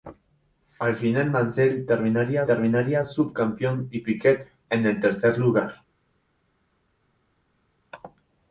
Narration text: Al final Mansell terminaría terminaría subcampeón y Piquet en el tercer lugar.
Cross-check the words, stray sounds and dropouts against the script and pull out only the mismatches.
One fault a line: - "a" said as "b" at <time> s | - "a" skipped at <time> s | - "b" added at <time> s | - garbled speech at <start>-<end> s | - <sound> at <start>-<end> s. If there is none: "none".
none